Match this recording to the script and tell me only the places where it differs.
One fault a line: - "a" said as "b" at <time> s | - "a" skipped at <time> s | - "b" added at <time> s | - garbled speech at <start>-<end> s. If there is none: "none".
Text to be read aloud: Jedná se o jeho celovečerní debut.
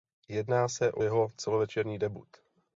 none